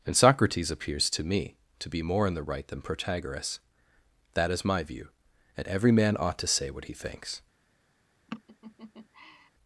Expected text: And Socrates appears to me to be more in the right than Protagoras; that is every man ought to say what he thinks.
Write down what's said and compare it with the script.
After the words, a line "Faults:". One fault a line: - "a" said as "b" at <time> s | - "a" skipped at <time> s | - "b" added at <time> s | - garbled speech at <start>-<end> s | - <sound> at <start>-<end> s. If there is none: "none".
And Socrates appears to me to be more in the right than Protagoras; that is my view, and every man ought to say what he thinks.
Faults:
- "my view and" added at 4.6 s
- laugh at 8.3-9.5 s